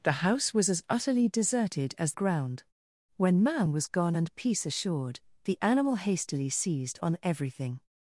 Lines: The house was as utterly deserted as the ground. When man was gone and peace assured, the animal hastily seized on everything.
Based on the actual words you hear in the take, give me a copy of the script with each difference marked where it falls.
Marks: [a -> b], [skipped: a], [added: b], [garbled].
The house was as utterly deserted as [skipped: the] ground. When man was gone and peace assured, the animal hastily seized on everything.